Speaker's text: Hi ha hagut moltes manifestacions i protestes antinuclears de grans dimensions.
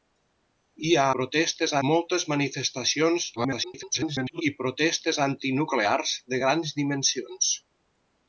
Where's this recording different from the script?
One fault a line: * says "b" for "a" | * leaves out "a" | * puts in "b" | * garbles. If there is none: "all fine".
* says "protestes" for "hagut"
* garbles